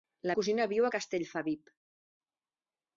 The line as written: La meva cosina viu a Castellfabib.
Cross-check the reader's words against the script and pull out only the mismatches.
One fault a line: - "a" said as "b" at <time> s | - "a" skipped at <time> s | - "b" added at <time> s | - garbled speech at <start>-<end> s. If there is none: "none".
- "meva" skipped at 0.3 s